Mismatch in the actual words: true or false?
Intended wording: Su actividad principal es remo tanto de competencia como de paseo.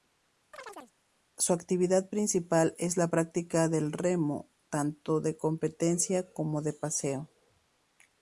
true